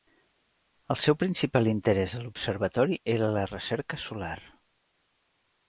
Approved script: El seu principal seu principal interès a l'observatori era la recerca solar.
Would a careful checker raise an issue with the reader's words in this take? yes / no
yes